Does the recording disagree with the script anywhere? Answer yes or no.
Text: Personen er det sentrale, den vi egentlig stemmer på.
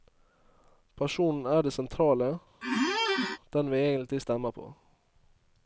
no